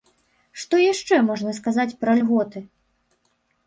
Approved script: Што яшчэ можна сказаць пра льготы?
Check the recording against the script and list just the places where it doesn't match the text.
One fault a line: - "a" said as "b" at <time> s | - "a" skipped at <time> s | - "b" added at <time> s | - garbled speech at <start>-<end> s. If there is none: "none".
none